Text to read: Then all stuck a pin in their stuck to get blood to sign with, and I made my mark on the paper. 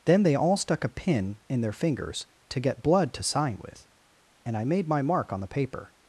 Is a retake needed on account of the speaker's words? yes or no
yes